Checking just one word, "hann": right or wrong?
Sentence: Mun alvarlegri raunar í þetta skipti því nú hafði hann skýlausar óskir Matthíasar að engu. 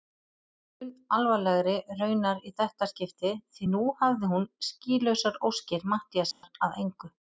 wrong